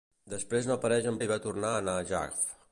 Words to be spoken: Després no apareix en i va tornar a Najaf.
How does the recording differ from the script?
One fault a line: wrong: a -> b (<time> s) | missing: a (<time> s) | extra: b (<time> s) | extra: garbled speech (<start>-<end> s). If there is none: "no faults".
no faults